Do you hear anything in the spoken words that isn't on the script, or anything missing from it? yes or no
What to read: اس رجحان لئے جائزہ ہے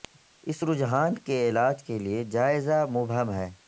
yes